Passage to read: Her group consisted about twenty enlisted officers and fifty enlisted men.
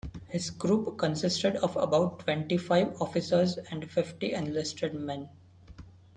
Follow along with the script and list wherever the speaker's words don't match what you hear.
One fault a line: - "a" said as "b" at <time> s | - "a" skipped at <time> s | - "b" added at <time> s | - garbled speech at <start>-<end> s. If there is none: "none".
- "Her" said as "His" at 0.3 s
- "of" added at 1.6 s
- "enlisted" said as "five" at 2.6 s